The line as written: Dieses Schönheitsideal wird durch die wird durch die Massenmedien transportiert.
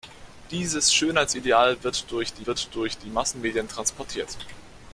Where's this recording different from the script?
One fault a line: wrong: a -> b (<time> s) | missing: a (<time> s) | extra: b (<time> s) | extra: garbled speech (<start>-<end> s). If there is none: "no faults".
no faults